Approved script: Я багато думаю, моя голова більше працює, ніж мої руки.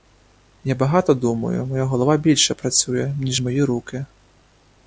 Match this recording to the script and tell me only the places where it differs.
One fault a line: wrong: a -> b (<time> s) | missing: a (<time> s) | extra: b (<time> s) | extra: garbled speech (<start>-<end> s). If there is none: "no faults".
no faults